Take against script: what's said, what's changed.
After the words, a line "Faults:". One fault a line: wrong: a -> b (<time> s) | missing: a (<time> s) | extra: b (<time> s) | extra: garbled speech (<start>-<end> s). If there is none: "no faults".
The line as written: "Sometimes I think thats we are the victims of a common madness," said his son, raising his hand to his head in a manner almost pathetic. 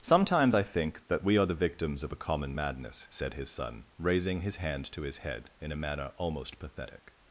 "Sometimes I think that we are the victims of a common madness," said his son, raising his hand to his head in a manner almost pathetic.
Faults:
wrong: thats -> that (1.1 s)